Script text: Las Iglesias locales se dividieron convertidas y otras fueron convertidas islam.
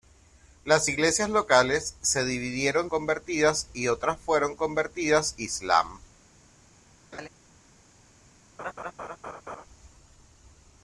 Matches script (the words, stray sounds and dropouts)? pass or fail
fail